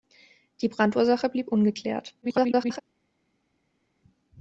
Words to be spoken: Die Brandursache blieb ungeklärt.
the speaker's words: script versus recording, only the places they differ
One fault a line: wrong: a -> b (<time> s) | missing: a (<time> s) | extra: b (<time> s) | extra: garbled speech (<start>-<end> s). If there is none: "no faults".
extra: garbled speech (2.2-2.8 s)